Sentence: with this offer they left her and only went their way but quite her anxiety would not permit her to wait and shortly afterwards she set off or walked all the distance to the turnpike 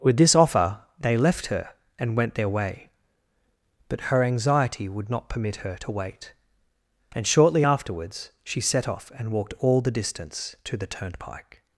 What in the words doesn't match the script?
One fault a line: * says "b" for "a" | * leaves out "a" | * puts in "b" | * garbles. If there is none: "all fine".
* leaves out "only"
* leaves out "quite"
* says "and" for "or"